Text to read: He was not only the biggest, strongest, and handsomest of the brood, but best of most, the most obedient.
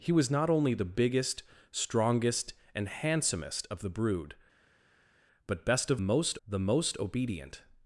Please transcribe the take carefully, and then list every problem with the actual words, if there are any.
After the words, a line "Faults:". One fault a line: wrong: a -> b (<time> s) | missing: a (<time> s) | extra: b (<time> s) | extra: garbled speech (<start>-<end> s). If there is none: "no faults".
He was not only the biggest, strongest, and handsomest of the brood, but best of most, the most obedient.
Faults:
no faults